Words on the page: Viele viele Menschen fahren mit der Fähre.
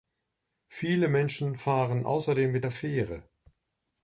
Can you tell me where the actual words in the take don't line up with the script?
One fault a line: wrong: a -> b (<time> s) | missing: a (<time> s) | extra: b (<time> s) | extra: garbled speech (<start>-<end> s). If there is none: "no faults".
missing: viele (1.1 s)
extra: außerdem (2.1 s)